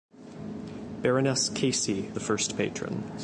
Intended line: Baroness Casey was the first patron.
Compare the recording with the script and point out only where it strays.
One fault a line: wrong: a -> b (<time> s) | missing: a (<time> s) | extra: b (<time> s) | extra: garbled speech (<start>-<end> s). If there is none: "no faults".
missing: was (2.1 s)